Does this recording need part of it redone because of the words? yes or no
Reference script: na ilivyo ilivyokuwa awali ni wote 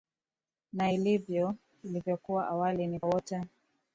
no